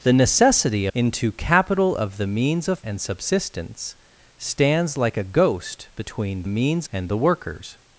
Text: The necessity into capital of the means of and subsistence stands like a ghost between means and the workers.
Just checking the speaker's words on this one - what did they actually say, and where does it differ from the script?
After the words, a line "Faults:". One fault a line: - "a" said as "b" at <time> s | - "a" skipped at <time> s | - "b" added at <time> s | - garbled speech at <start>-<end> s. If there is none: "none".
The necessity into capital of the means of and subsistence stands like a ghost between means and the workers.
Faults:
none